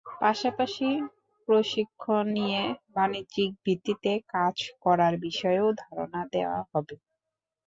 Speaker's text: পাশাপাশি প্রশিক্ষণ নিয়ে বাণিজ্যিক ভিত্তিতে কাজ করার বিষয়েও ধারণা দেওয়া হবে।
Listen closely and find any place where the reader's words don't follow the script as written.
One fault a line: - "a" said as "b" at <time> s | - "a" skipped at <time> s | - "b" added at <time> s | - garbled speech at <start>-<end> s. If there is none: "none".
none